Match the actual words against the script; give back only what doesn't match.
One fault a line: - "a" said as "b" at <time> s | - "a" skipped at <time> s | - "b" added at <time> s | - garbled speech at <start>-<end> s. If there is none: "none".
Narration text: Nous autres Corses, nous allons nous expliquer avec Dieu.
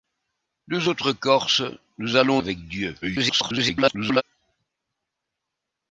- "nous expliquer" skipped at 2.4 s
- garbled speech at 3.0-4.2 s